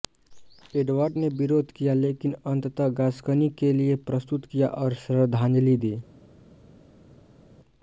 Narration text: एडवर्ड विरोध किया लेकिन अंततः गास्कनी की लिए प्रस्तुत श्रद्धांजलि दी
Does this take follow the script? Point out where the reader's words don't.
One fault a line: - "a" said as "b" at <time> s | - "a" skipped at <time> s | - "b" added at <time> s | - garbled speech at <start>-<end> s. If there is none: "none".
- "ने" added at 1.2 s
- "की" said as "के" at 3.6 s
- "किया और" added at 4.5 s